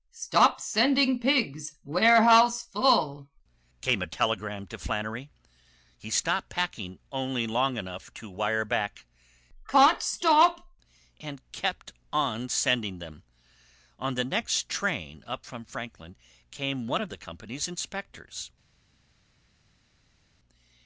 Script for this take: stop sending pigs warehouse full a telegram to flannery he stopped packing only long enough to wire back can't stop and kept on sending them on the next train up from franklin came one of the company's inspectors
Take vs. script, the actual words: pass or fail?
fail